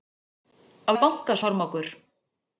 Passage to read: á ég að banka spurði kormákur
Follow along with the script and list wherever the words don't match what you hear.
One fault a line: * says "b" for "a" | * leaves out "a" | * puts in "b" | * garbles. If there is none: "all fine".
* leaves out "ég"
* leaves out "spurði"